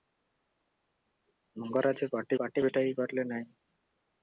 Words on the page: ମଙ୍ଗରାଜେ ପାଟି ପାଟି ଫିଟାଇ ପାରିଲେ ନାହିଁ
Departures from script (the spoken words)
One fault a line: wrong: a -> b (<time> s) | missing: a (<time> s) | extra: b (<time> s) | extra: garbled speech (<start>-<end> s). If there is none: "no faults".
no faults